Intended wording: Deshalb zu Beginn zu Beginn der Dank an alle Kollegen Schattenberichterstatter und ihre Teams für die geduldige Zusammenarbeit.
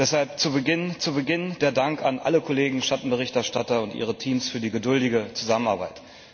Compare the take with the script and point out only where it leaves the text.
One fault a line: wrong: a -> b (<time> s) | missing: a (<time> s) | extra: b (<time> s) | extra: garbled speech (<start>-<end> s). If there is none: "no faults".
no faults